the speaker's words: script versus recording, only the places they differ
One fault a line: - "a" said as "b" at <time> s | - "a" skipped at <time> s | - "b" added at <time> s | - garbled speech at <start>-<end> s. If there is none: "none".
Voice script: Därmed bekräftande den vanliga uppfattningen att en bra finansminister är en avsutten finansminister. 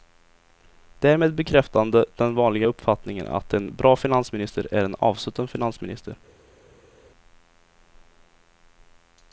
none